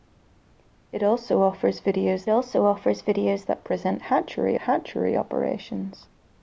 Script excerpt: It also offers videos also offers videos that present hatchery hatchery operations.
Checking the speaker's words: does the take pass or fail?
pass